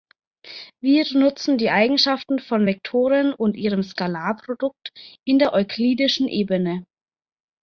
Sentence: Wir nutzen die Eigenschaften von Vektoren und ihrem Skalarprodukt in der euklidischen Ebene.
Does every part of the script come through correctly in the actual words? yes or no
yes